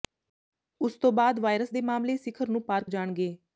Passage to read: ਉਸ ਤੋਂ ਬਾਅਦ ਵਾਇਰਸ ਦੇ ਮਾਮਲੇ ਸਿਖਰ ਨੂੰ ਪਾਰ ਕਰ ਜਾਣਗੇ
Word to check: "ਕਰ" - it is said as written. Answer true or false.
false